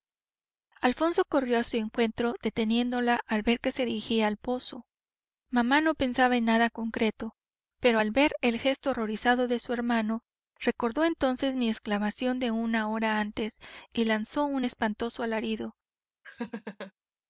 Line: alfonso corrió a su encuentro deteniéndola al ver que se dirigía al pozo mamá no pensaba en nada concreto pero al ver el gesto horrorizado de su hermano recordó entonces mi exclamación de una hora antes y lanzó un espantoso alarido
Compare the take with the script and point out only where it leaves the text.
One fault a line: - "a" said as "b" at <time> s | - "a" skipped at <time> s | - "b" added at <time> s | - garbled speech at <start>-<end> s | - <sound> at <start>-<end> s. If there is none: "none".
- laugh at 16.2-16.9 s